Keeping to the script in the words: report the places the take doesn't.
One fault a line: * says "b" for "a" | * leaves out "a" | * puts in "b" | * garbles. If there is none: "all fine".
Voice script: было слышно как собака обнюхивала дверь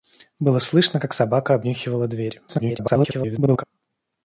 * garbles